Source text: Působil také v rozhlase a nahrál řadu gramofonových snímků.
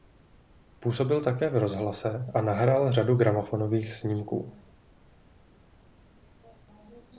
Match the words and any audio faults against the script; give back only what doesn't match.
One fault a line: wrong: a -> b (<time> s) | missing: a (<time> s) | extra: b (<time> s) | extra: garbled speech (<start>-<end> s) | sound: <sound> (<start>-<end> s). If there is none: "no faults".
no faults